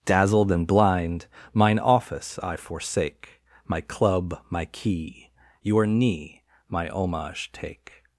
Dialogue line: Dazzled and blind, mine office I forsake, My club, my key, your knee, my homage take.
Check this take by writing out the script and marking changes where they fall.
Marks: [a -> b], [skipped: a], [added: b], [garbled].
Dazzled and blind, mine office I forsake, My club, my key, your knee, my homage take.